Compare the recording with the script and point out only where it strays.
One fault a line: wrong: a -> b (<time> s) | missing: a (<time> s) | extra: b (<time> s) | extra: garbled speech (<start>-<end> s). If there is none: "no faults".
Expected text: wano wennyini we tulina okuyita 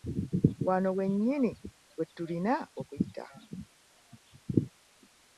no faults